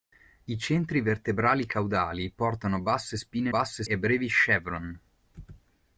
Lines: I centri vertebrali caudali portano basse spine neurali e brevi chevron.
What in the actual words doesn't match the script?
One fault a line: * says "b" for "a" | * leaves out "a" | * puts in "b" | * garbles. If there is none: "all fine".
* says "basse" for "neurali"